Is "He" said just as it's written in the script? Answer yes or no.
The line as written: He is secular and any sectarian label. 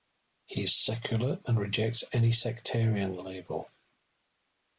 yes